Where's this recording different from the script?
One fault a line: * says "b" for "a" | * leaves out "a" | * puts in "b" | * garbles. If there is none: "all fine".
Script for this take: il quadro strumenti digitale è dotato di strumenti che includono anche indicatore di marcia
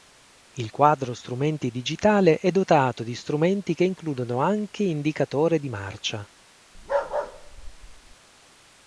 all fine